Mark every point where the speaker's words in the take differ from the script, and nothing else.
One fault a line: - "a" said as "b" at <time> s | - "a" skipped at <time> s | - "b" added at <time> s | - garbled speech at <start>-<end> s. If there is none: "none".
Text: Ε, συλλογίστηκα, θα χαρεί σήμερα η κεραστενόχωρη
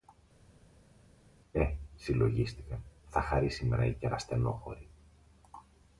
none